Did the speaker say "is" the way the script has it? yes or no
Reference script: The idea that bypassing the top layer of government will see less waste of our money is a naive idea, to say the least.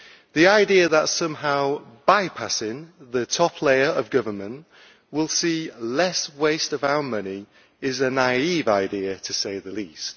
yes